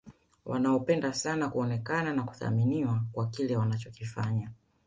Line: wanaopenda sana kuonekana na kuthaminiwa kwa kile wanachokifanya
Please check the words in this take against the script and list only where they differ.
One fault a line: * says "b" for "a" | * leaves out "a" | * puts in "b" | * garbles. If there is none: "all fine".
all fine